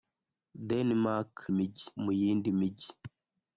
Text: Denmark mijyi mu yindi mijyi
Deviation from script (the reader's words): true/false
false